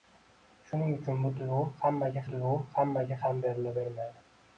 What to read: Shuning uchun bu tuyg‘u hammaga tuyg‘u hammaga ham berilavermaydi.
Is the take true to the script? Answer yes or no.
yes